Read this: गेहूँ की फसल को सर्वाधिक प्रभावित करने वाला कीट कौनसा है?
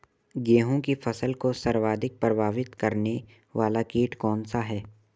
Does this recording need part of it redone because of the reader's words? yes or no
no